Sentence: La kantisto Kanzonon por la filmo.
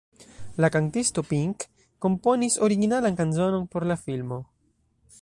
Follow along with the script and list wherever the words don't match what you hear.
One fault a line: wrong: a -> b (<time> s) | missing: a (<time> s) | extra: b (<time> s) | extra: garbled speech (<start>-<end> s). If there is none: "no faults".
extra: Pink komponis originalan (1.3 s)